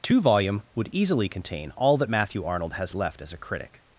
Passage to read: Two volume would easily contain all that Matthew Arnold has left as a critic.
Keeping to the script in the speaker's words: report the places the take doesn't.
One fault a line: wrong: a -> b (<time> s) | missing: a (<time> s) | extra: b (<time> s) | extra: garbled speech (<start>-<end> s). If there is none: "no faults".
no faults